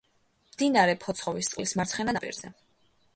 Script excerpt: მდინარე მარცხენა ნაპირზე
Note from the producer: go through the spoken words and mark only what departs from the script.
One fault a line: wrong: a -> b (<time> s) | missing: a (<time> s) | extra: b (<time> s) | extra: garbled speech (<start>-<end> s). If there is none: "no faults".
extra: ფოცხოვისწყლის (1.0 s)